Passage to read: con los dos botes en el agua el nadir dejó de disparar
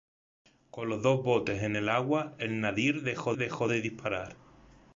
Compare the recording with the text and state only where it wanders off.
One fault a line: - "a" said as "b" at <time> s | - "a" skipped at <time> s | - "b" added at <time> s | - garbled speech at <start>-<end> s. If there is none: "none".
- "dejó" added at 3.3 s